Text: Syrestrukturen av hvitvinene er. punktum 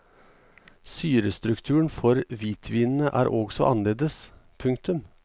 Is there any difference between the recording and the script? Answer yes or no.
yes